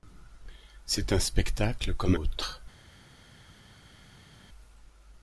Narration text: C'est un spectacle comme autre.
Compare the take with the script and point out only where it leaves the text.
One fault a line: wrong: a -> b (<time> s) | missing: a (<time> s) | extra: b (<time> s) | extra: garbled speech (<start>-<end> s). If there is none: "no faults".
no faults